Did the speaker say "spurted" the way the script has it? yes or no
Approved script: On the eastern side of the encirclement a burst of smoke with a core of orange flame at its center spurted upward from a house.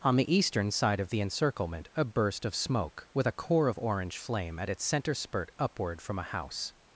no